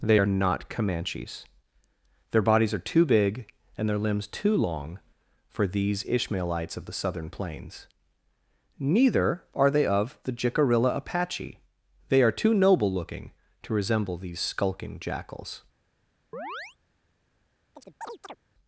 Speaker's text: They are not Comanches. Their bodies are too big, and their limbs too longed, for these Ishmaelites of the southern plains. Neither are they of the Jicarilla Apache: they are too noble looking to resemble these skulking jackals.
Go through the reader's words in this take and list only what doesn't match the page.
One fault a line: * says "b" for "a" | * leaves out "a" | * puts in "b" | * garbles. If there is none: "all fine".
* says "long" for "longed"